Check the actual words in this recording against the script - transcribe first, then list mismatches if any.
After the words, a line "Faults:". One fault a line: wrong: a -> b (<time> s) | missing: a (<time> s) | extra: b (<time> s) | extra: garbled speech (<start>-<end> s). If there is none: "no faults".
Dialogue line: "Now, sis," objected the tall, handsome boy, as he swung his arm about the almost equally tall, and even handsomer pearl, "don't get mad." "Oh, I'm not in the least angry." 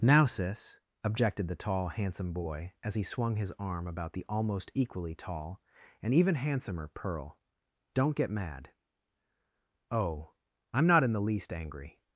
"Now, sis," objected the tall, handsome boy, as he swung his arm about the almost equally tall, and even handsomer pearl, "don't get mad." "Oh, I'm not in the least angry."
Faults:
no faults